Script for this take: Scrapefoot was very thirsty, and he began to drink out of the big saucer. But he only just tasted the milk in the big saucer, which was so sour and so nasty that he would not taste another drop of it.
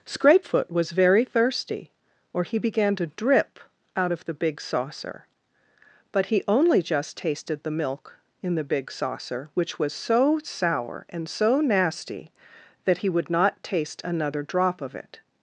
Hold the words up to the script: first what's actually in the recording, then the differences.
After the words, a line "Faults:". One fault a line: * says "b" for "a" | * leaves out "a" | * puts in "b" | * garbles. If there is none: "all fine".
Scrapefoot was very thirsty, or he began to drip out of the big saucer. But he only just tasted the milk in the big saucer, which was so sour and so nasty that he would not taste another drop of it.
Faults:
* says "or" for "and"
* says "drip" for "drink"